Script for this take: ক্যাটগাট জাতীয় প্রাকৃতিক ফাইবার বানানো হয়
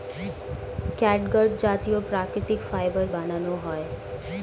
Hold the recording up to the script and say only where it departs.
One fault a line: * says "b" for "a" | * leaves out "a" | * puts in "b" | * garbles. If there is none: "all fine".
all fine